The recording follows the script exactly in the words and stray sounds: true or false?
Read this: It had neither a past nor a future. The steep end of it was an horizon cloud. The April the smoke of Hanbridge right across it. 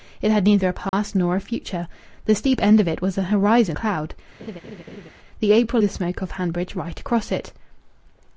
false